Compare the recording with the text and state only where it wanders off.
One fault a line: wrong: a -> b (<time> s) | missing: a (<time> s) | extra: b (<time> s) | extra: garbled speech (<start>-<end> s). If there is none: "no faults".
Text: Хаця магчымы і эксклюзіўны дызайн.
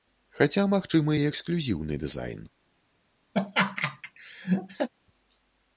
no faults